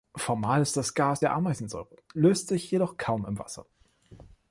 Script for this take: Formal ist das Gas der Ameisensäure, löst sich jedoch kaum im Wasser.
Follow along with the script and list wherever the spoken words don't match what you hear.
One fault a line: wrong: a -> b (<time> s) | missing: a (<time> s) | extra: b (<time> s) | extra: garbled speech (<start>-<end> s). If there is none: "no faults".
no faults